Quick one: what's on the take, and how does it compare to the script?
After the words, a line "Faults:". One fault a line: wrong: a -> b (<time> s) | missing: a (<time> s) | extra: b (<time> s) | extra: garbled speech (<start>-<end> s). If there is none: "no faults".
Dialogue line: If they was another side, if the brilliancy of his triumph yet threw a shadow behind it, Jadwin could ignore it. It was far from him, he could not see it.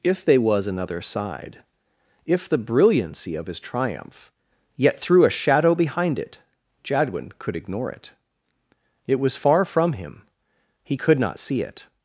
If they was another side, if the brilliancy of his triumph yet threw a shadow behind it, Jadwin could ignore it. It was far from him, he could not see it.
Faults:
no faults